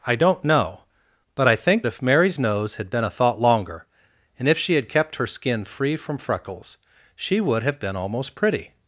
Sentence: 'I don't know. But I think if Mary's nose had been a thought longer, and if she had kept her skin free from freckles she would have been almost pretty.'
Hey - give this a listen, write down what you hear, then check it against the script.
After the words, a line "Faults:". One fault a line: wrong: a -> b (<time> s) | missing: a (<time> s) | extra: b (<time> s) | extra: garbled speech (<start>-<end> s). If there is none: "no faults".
'I don't know. But I think if Mary's nose had been a thought longer, and if she had kept her skin free from freckles she would have been almost pretty.'
Faults:
no faults